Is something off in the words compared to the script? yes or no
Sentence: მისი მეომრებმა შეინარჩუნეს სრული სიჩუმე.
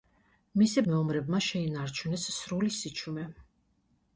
no